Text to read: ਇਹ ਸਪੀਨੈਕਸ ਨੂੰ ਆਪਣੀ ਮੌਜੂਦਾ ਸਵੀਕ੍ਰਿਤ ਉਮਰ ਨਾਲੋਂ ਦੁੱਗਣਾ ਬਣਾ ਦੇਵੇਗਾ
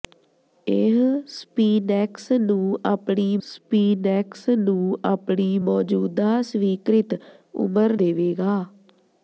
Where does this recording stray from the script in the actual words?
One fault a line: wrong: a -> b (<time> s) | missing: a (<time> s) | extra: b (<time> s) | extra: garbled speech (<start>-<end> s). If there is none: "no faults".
extra: ਸਪੀਨੈਕਸ ਨੂੰ ਆਪਣੀ (3.4 s)
missing: ਨਾਲੋਂ ਦੁੱਗਣਾ ਬਣਾ (8.0 s)